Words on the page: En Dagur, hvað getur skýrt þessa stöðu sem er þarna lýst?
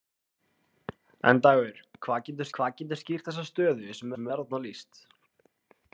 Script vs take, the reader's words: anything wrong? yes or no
yes